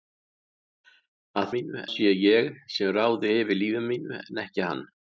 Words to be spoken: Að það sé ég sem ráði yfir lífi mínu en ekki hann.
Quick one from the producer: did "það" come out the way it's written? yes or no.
no